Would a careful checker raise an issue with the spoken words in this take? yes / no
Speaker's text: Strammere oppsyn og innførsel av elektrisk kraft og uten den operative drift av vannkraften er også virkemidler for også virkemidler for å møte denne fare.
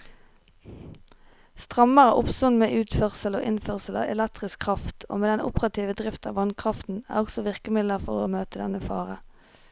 yes